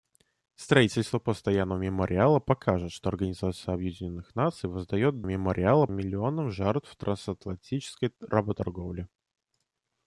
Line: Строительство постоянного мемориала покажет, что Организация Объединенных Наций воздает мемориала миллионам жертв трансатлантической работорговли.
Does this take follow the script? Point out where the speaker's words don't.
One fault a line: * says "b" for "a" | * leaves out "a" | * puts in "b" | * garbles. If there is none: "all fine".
all fine